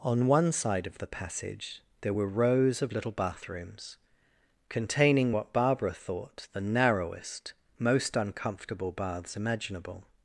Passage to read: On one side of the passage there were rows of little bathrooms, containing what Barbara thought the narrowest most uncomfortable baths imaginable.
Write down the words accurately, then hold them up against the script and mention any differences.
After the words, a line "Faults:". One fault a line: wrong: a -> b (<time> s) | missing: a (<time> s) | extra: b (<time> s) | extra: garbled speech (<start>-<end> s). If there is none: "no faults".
On one side of the passage there were rows of little bathrooms, containing what Barbara thought the narrowest most uncomfortable baths imaginable.
Faults:
no faults